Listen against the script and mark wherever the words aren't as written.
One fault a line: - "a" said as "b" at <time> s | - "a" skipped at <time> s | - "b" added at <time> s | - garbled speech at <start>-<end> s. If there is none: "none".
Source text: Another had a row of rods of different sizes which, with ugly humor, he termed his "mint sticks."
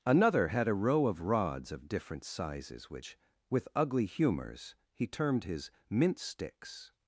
- "humor" said as "humors" at 4.0 s